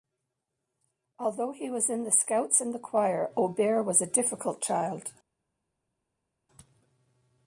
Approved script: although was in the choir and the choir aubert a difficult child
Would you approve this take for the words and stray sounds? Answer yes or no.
no